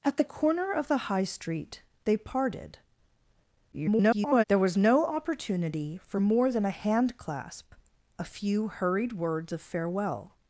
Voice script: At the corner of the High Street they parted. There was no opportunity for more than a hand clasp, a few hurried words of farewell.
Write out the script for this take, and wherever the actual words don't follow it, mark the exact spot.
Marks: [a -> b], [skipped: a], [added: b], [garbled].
At the corner of the High Street they parted. [garbled] There was no opportunity for more than a hand clasp, a few hurried words of farewell.